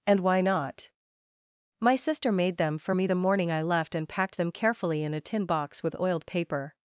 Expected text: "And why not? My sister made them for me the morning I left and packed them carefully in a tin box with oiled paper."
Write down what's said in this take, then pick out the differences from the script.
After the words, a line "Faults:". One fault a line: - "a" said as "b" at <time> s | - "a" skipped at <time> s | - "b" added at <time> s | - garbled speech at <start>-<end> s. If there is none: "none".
"And why not? My sister made them for me the morning I left and packed them carefully in a tin box with oiled paper."
Faults:
none